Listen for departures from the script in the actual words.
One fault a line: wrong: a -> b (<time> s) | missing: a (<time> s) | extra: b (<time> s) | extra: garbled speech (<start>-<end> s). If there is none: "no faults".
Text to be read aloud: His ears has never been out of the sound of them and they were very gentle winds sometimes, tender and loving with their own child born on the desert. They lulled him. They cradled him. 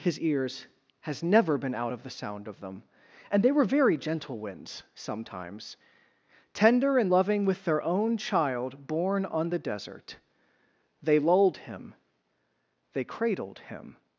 no faults